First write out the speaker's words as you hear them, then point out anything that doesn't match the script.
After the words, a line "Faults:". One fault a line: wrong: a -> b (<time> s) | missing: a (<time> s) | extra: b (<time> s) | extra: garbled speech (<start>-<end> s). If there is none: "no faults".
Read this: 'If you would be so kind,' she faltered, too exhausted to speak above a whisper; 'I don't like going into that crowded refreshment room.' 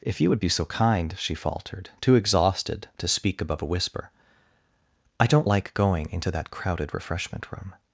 'If you would be so kind,' she faltered, too exhausted to speak above a whisper; 'I don't like going into that crowded refreshment room.'
Faults:
no faults